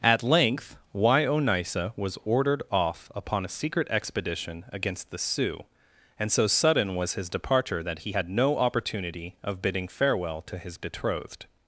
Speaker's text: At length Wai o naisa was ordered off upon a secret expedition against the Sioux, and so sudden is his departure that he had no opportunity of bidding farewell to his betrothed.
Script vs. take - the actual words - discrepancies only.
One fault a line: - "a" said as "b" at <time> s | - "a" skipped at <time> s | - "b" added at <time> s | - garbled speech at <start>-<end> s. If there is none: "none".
- "is" said as "was" at 7.0 s